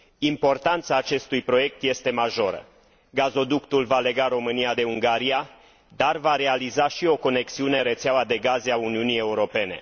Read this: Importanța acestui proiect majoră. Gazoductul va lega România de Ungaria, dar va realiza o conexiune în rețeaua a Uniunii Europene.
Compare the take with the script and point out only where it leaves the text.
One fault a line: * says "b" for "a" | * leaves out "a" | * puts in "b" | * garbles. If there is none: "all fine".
* puts in "este"
* puts in "și"
* puts in "de gaze"